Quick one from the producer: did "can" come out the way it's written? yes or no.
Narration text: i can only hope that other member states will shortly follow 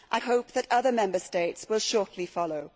no